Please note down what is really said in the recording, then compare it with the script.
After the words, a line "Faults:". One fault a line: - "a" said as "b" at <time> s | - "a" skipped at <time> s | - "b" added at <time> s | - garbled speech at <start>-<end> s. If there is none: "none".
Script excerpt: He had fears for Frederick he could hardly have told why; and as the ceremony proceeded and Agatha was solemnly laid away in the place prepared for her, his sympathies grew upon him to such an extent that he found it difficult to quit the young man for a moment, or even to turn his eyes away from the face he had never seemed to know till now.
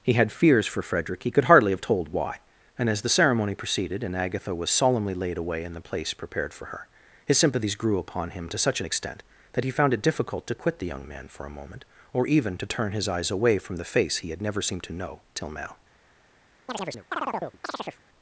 He had fears for Frederick he could hardly have told why; and as the ceremony proceeded and Agatha was solemnly laid away in the place prepared for her, his sympathies grew upon him to such an extent that he found it difficult to quit the young man for a moment, or even to turn his eyes away from the face he had never seemed to know till now.
Faults:
none